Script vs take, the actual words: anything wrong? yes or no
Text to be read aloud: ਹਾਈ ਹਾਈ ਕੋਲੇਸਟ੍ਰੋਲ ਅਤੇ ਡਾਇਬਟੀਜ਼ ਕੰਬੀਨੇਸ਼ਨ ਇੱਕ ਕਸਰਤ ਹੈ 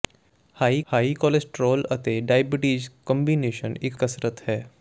no